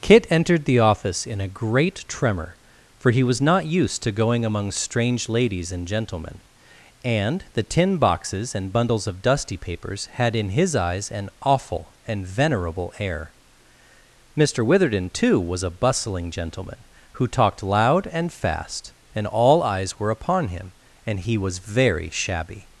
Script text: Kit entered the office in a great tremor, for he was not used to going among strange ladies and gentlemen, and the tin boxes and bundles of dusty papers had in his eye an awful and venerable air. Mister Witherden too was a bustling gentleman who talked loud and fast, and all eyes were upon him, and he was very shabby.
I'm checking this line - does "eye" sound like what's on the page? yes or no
no